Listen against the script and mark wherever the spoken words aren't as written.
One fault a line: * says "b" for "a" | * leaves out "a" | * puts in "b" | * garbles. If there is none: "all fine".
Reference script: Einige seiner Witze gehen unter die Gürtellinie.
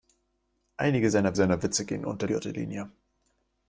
* puts in "seiner"
* leaves out "die"